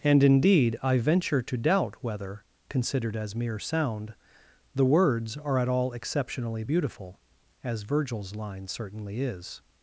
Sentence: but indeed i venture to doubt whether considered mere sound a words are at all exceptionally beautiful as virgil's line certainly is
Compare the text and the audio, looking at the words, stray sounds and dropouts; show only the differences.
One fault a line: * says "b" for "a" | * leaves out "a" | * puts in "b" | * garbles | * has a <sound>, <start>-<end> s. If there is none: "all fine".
* says "and" for "but"
* puts in "as"
* says "the" for "a"